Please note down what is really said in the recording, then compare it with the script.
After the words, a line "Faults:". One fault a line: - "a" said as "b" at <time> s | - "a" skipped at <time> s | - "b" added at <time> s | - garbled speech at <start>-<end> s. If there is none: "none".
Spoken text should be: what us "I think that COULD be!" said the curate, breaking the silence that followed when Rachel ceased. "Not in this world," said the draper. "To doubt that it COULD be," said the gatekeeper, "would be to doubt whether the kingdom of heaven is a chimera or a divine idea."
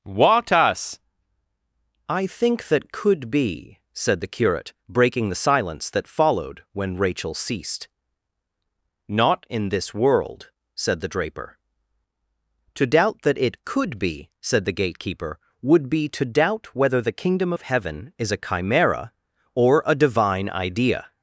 what us "I think that COULD be!" said the curate, breaking the silence that followed when Rachel ceased. "Not in this world," said the draper. "To doubt that it COULD be," said the gatekeeper, "would be to doubt whether the kingdom of heaven is a chimera or a divine idea."
Faults:
none